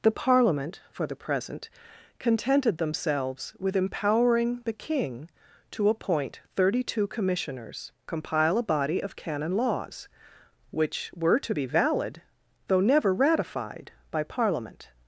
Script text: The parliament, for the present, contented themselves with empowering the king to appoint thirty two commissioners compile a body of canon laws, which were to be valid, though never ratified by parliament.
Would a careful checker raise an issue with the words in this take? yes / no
no